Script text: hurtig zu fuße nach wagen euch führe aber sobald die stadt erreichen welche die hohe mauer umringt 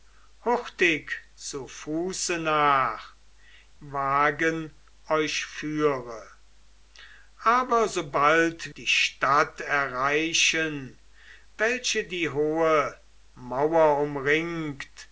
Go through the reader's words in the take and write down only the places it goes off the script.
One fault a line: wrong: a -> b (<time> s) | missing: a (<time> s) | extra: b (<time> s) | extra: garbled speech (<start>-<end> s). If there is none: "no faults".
no faults